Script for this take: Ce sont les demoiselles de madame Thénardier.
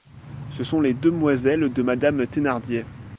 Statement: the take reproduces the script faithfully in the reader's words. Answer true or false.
true